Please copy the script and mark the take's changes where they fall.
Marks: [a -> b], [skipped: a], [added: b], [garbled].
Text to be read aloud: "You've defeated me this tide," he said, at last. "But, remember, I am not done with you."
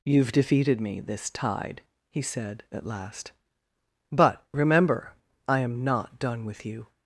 "You've defeated me this tide," he said, at last. "But, remember, I am not done with you."